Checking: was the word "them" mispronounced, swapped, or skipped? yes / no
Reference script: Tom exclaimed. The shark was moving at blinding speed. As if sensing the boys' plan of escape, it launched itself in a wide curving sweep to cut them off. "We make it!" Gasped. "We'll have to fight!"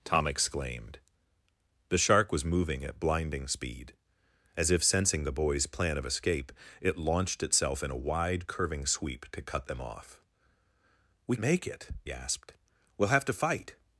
no